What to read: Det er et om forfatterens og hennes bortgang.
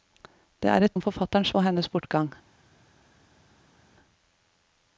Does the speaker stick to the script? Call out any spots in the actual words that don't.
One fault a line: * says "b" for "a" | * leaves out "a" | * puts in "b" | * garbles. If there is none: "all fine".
all fine